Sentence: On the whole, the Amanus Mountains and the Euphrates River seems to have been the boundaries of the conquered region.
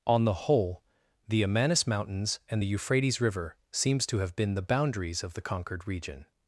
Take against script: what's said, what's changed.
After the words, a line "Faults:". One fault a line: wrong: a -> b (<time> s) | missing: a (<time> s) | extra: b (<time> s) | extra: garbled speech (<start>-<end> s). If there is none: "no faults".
On the whole, the Amanus Mountains and the Euphrates River seems to have been the boundaries of the conquered region.
Faults:
no faults